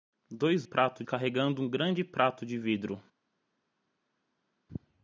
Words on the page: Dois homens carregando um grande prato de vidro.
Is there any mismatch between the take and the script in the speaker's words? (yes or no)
yes